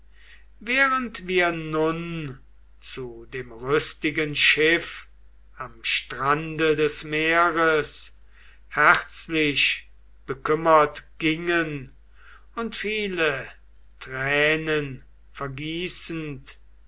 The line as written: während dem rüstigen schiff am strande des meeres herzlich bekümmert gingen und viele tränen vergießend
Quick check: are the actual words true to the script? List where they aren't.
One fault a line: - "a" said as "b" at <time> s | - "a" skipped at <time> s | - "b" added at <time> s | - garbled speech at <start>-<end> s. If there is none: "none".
- "wir nun zu" added at 1.3 s